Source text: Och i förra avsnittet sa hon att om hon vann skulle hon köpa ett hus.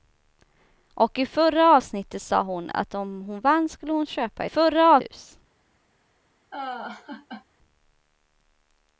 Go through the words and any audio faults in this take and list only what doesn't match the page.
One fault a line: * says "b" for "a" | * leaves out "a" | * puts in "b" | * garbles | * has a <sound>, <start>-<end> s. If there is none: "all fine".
* says "förra" for "ett"
* has a laugh, 6.5-7.5 s